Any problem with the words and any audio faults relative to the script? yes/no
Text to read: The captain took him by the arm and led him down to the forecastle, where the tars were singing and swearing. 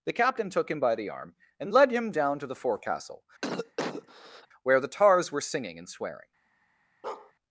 yes